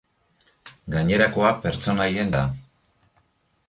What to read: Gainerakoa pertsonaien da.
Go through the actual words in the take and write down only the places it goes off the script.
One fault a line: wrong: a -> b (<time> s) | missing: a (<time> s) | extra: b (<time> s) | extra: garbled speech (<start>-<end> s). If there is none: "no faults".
no faults